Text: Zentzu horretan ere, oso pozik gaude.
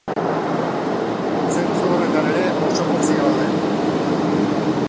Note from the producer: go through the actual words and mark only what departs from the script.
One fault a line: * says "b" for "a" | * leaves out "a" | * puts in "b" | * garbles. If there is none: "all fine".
all fine